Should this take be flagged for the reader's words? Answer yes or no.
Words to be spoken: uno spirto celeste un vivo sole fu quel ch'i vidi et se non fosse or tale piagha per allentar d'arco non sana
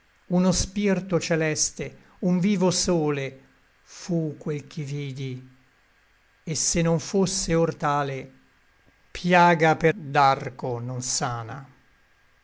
yes